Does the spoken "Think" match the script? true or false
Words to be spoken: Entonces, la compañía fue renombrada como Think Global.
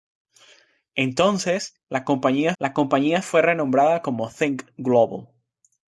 true